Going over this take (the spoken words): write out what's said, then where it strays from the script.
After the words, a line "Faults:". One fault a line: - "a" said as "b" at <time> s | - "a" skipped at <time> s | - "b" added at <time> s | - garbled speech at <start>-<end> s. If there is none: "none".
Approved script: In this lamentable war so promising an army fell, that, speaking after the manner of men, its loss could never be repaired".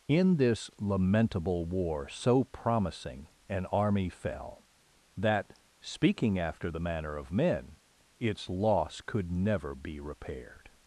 In this lamentable war so promising an army fell, that, speaking after the manner of men, its loss could never be repaired".
Faults:
none